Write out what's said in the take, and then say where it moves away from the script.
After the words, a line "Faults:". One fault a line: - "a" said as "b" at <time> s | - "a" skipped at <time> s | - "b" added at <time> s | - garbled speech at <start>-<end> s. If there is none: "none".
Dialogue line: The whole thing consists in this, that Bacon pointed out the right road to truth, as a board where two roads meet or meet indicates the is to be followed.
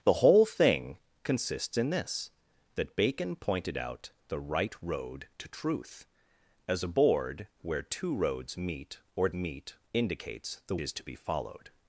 The whole thing consists in this, that Bacon pointed out the right road to truth, as a board where two roads meet or meet indicates the is to be followed.
Faults:
none